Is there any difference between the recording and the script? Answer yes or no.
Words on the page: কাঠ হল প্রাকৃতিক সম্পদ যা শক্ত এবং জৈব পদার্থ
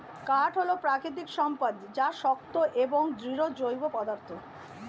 yes